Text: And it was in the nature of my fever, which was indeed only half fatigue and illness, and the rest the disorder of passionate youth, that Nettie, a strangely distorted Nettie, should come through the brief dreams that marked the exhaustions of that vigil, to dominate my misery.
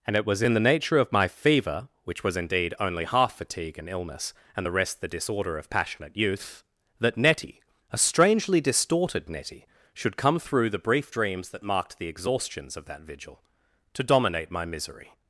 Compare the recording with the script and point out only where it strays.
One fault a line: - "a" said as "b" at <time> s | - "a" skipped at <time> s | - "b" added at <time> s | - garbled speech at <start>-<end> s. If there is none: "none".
none